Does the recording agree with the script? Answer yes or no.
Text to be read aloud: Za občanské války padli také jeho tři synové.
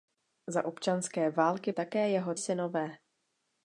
no